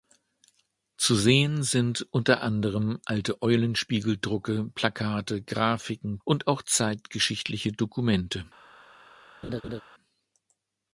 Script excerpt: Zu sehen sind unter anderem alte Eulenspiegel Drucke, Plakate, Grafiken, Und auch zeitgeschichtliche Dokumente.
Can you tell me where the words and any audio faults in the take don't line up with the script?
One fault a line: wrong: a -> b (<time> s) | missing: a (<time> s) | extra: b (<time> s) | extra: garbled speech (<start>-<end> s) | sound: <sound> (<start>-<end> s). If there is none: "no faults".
sound: laugh (9.4-9.8 s)